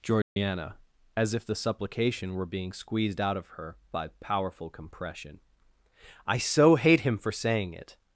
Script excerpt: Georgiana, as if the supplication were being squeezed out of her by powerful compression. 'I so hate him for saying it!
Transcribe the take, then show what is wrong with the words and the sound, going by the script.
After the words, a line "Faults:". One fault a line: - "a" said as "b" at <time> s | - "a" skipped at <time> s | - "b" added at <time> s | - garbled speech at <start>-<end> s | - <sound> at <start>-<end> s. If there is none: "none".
Georgiana, as if the supplication were being squeezed out of her by powerful compression. 'I so hate him for saying it!
Faults:
- dropout at 0.2-0.4 s